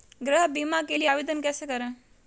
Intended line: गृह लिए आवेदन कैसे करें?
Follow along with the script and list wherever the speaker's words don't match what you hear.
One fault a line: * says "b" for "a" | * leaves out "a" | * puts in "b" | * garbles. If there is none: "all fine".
* puts in "बीमा के"